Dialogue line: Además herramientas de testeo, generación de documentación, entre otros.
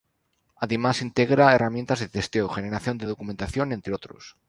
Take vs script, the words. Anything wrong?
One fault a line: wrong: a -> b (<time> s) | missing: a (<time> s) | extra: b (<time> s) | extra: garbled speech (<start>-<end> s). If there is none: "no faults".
extra: integra (1.0 s)